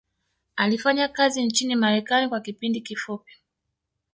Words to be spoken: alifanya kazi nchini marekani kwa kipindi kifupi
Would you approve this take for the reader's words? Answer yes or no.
yes